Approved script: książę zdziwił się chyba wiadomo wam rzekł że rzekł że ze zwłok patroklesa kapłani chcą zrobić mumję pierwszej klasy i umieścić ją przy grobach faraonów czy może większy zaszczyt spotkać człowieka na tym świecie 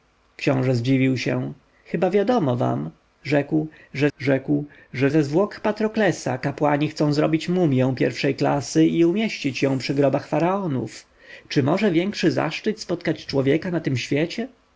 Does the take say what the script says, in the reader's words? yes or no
yes